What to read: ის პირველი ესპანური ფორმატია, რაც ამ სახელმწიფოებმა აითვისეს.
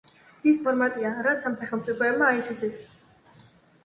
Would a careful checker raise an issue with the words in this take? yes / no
yes